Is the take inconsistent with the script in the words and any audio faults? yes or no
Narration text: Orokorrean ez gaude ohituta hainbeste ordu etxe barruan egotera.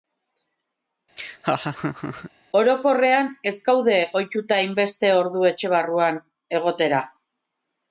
yes